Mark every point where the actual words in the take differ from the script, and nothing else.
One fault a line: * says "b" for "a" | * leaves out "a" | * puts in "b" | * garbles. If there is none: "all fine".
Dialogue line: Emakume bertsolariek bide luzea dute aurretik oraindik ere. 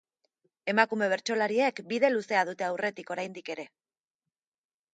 all fine